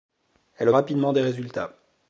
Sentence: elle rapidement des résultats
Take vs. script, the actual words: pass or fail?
pass